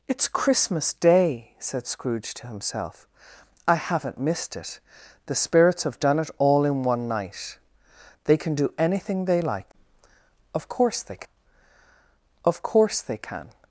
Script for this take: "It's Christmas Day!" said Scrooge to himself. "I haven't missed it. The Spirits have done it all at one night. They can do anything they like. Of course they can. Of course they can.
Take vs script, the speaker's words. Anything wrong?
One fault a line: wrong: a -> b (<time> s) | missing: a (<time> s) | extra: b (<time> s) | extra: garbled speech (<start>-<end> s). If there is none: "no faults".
wrong: at -> in (6.7 s)